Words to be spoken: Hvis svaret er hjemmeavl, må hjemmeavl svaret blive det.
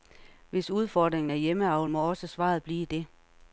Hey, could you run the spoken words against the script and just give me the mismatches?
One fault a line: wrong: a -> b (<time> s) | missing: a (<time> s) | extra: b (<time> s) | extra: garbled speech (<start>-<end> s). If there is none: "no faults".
wrong: svaret -> udfordringen (0.7 s)
wrong: hjemmeavl -> også (2.1 s)